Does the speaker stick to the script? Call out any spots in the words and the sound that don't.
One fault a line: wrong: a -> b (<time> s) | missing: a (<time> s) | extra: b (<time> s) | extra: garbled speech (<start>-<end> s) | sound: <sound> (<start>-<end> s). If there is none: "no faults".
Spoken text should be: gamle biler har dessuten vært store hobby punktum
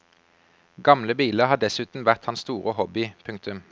extra: hans (2.2 s)